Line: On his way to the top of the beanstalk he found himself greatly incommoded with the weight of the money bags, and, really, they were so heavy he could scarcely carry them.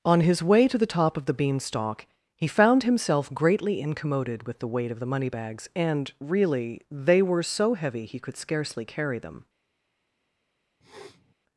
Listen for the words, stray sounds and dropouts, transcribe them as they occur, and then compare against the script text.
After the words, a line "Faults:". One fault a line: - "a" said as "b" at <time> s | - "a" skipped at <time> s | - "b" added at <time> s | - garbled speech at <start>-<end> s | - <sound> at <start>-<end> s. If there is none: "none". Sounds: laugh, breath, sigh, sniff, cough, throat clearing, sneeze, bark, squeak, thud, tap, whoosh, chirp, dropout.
On his way to the top of the beanstalk he found himself greatly incommoded with the weight of the money bags, and, really, they were so heavy he could scarcely carry them.
Faults:
- sniff at 10.8-11.3 s